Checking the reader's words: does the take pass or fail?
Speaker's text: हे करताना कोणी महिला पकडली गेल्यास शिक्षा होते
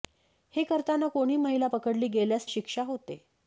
pass